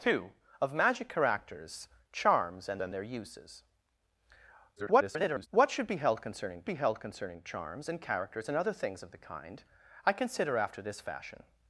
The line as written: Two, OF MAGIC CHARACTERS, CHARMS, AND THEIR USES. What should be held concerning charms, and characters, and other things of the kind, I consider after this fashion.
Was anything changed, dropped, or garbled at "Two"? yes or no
no